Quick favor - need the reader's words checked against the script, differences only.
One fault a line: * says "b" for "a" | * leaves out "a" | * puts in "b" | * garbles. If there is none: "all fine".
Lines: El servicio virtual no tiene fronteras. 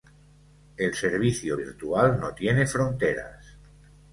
all fine